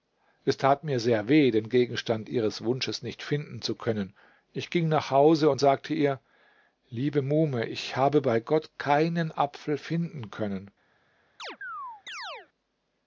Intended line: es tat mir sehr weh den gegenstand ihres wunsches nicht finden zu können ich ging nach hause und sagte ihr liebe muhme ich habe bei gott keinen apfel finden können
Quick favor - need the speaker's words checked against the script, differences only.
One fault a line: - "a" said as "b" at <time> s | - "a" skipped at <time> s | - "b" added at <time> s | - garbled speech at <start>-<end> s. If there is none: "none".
none